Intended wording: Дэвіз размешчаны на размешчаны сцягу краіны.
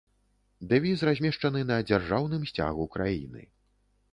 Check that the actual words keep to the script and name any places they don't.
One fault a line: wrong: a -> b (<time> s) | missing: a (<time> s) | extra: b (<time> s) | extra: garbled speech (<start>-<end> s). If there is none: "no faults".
wrong: размешчаны -> дзяржаўным (1.9 s)